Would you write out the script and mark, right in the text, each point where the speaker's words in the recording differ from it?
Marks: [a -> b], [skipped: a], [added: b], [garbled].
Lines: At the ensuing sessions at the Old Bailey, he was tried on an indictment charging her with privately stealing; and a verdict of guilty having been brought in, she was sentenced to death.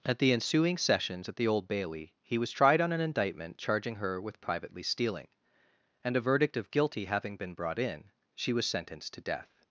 At the ensuing sessions at the Old Bailey, he was tried on an indictment charging her with privately stealing; and a verdict of guilty having been brought in, she was sentenced to death.